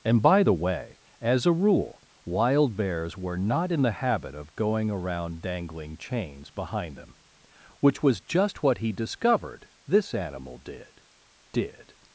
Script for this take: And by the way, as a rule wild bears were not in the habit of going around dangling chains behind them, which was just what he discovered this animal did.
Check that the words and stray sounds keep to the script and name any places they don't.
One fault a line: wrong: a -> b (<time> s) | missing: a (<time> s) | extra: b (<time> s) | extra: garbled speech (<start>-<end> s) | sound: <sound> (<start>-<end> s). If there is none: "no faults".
extra: did (11.5 s)